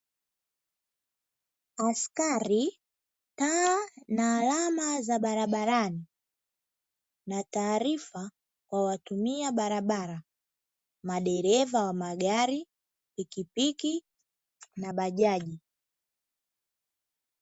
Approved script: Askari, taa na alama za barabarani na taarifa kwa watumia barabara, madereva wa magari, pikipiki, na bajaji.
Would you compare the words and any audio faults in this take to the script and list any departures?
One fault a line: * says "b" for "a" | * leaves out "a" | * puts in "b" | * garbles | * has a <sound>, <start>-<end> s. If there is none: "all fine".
all fine